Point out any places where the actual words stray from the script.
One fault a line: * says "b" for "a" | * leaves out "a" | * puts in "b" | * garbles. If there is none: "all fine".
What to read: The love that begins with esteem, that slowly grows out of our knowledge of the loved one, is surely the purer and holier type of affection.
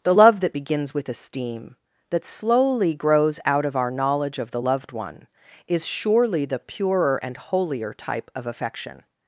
all fine